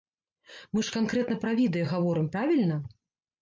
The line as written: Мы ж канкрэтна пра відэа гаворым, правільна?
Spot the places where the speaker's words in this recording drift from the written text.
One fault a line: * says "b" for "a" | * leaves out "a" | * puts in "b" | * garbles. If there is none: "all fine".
all fine